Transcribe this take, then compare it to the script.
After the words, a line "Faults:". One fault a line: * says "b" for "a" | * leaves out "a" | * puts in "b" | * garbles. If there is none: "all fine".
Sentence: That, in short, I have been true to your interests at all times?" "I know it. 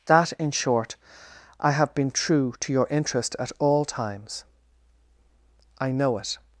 That, in short, I have been true to your interest at all times?" "I know it.
Faults:
* says "interest" for "interests"